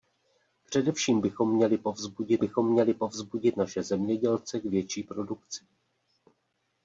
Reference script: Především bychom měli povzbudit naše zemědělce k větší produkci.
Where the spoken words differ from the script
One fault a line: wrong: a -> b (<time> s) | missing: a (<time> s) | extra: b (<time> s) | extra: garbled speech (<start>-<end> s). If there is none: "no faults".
extra: bychom měli povzbudit (2.4 s)